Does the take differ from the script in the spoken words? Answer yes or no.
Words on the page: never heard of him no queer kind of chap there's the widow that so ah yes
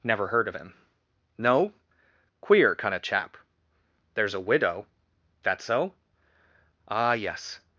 yes